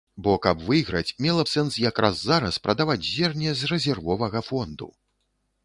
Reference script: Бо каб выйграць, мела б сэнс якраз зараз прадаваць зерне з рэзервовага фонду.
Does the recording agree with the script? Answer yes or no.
yes